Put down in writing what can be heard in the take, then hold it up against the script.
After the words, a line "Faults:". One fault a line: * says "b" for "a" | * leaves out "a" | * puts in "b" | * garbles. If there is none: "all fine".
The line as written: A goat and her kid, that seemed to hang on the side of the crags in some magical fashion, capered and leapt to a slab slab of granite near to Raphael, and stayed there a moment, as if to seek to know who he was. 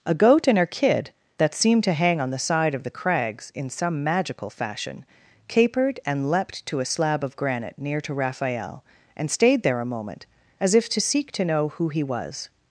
A goat and her kid, that seemed to hang on the side of the crags in some magical fashion, capered and leapt to a slab of granite near to Raphael, and stayed there a moment, as if to seek to know who he was.
Faults:
* leaves out "slab"